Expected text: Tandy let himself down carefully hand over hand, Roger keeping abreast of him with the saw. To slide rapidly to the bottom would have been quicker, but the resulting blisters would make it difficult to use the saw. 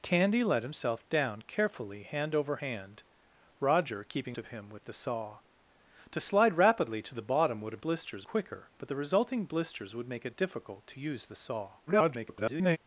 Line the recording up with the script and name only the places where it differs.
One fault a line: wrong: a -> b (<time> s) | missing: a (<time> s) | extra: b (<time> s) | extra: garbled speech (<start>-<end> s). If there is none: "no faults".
missing: abreast (4.4 s)
wrong: been -> blisters (7.8 s)
extra: garbled speech (11.9-12.8 s)